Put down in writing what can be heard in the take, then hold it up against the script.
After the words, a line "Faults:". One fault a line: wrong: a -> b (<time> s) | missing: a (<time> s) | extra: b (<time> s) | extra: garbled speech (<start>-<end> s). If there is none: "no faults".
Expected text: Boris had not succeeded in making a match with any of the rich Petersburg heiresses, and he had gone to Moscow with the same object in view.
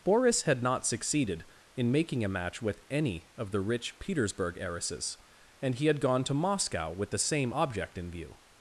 Boris had not succeeded in making a match with any of the rich Petersburg heiresses, and he had gone to Moscow with the same object in view.
Faults:
no faults